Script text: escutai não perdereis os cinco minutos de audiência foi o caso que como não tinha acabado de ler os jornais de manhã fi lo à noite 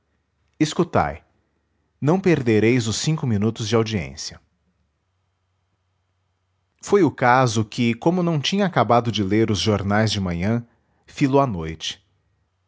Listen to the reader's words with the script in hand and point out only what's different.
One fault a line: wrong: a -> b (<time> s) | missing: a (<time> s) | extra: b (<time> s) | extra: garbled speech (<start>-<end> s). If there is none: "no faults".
no faults